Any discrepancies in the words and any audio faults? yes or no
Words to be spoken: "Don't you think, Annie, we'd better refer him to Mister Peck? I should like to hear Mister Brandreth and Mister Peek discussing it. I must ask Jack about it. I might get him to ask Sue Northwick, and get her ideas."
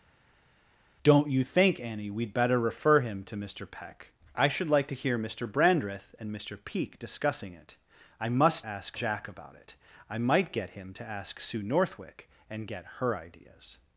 no